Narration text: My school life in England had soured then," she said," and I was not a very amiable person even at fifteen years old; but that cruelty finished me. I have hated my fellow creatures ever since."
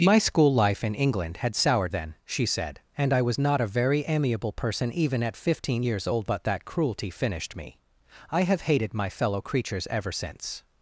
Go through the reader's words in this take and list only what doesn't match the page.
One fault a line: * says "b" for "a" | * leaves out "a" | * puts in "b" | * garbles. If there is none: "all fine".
all fine